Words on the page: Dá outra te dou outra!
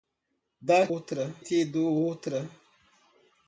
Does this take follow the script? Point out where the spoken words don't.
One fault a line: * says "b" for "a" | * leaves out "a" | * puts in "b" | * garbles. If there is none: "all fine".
all fine